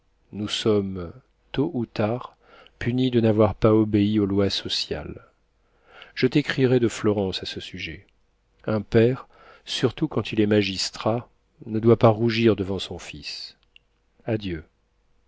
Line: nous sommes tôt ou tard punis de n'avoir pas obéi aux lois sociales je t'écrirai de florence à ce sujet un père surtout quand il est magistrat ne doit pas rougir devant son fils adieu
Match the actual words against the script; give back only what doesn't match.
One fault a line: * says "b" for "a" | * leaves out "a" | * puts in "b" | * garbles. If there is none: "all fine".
all fine